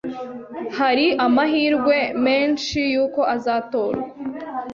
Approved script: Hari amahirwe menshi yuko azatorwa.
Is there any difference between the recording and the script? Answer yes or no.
no